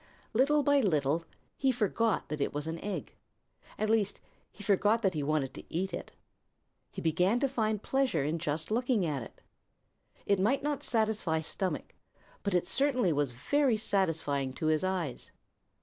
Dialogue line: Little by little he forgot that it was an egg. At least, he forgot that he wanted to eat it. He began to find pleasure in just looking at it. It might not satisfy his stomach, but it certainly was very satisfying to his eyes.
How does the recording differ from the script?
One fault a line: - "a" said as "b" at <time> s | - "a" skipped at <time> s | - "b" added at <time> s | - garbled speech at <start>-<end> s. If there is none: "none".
- "his" skipped at 11.4 s